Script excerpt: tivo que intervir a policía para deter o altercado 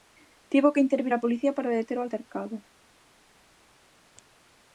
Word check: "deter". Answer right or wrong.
right